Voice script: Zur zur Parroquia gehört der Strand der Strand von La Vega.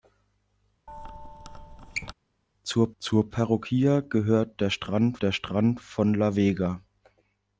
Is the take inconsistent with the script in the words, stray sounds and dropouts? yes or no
yes